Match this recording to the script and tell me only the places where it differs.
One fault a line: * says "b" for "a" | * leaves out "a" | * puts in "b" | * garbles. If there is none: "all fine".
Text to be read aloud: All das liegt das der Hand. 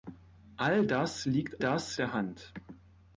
all fine